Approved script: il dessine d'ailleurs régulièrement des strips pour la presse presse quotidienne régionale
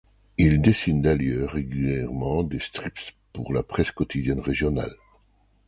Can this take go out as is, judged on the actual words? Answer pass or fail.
fail